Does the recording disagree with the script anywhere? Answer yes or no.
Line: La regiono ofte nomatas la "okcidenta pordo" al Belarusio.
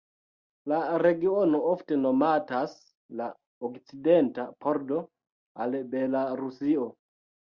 no